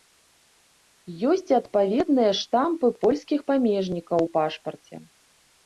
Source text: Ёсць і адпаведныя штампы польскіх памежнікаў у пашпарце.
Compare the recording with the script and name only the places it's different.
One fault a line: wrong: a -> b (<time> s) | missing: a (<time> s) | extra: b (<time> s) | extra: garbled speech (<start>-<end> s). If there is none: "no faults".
no faults